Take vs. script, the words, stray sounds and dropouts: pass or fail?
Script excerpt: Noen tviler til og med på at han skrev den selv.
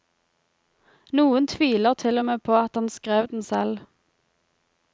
pass